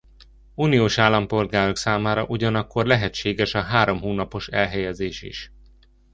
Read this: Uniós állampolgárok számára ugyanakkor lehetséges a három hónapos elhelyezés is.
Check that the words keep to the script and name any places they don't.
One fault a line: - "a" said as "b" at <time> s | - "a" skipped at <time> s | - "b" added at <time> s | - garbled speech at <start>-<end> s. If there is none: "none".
none